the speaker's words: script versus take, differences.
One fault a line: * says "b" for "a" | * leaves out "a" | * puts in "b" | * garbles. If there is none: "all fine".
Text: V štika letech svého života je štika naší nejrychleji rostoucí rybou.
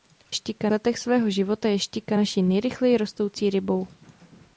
all fine